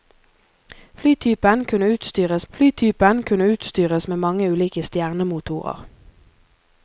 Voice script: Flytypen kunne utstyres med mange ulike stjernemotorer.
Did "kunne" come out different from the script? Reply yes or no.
no